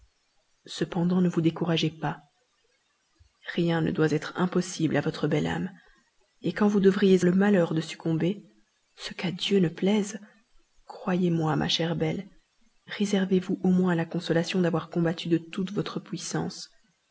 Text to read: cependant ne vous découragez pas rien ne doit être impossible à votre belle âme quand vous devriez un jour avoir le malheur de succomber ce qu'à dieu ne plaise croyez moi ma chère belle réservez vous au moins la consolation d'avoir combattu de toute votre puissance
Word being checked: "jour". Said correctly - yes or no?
no